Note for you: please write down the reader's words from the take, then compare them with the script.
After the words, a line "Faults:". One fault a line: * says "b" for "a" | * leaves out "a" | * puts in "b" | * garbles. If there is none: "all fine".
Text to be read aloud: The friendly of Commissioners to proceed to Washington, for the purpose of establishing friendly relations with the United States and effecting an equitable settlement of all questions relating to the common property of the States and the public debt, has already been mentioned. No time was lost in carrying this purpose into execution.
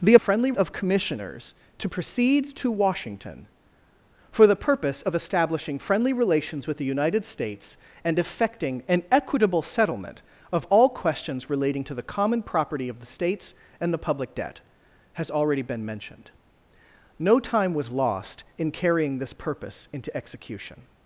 The friendly of Commissioners to proceed to Washington, for the purpose of establishing friendly relations with the United States and effecting an equitable settlement of all questions relating to the common property of the States and the public debt, has already been mentioned. No time was lost in carrying this purpose into execution.
Faults:
all fine